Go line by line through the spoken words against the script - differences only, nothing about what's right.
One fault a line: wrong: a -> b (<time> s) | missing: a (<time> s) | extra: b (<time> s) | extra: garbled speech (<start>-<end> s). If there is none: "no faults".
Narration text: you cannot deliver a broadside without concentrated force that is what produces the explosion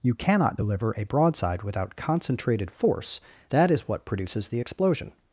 no faults